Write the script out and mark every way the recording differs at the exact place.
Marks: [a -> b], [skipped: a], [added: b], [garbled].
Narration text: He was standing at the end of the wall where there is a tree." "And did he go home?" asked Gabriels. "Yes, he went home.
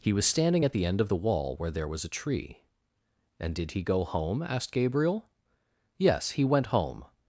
He was standing at the end of the wall where there [is -> was] a tree." "And did he go home?" asked [Gabriels. -> Gabriel] "Yes, he went home.